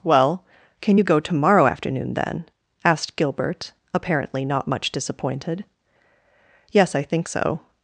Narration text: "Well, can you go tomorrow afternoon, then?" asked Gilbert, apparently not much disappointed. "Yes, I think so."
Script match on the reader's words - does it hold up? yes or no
yes